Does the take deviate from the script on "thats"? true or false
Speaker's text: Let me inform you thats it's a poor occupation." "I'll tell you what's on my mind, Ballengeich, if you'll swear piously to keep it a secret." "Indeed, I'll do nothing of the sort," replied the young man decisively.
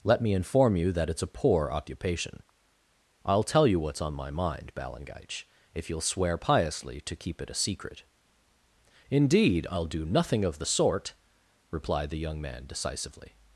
true